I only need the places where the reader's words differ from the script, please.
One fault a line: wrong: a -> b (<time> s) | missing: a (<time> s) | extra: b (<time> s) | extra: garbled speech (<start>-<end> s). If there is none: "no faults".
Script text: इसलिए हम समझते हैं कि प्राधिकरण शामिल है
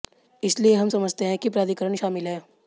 no faults